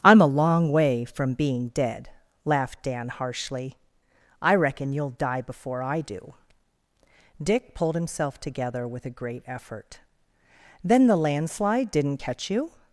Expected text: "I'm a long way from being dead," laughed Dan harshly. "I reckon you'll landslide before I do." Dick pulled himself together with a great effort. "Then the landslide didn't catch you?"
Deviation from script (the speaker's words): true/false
true